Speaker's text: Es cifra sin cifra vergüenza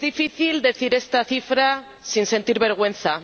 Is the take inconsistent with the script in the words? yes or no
yes